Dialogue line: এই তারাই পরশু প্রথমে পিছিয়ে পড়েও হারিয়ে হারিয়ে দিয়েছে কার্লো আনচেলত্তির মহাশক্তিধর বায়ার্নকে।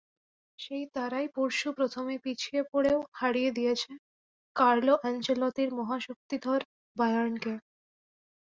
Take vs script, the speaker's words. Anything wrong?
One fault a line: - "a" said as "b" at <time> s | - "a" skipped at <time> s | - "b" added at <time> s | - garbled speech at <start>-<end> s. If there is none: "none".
- "এই" said as "সেই" at 0.6 s
- "হারিয়ে" skipped at 3.5 s